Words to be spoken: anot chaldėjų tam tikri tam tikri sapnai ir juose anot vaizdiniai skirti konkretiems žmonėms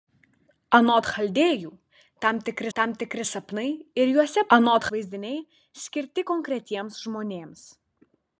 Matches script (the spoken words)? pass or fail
pass